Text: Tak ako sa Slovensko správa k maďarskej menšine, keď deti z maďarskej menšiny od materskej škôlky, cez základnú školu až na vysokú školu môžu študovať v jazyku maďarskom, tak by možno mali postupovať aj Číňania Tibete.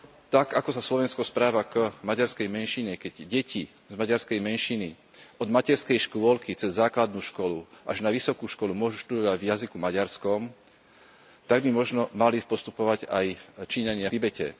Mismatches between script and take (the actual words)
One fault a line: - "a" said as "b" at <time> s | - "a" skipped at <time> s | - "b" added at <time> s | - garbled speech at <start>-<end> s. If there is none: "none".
none